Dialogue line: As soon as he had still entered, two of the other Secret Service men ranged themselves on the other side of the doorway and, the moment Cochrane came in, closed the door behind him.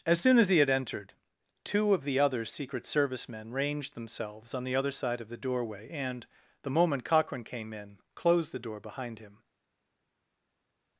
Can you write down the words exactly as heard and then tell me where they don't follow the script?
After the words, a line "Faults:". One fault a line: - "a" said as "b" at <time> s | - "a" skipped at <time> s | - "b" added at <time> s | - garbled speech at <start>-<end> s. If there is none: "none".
As soon as he had entered, two of the other Secret Service men ranged themselves on the other side of the doorway and, the moment Cochrane came in, closed the door behind him.
Faults:
- "still" skipped at 0.7 s